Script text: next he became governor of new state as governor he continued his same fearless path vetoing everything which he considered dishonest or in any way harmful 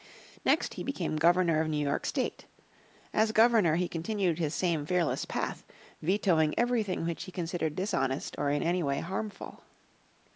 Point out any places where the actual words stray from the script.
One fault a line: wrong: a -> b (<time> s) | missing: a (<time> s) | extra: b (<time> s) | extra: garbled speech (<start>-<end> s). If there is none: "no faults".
extra: york (1.9 s)